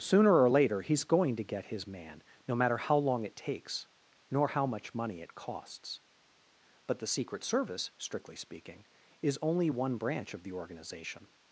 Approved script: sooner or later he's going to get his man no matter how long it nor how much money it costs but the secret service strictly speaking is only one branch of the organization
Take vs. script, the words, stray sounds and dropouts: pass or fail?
fail